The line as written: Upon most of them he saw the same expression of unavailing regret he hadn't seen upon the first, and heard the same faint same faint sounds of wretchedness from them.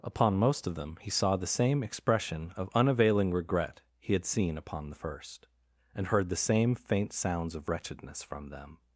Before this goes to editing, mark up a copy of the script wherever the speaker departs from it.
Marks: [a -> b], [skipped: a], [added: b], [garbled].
Upon most of them he saw the same expression of unavailing regret he [hadn't -> had] seen upon the first, and heard the same faint [skipped: same faint] sounds of wretchedness from them.